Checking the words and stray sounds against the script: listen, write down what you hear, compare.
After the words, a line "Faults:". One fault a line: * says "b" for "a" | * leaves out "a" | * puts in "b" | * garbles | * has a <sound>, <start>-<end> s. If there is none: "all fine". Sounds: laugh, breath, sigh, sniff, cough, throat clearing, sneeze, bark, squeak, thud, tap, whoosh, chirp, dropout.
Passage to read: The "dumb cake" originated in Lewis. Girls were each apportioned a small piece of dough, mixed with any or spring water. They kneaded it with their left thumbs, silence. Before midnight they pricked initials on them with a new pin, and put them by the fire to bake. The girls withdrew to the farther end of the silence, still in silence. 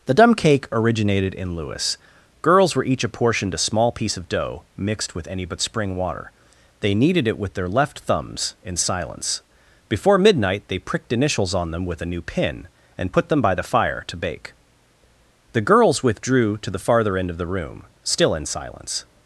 The "dumb cake" originated in Lewis. Girls were each apportioned a small piece of dough, mixed with any but spring water. They kneaded it with their left thumbs, in silence. Before midnight they pricked initials on them with a new pin, and put them by the fire to bake. The girls withdrew to the farther end of the room, still in silence.
Faults:
* says "but" for "or"
* puts in "in"
* says "room" for "silence"